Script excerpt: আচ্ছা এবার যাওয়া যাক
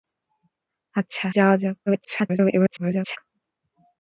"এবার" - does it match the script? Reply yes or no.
no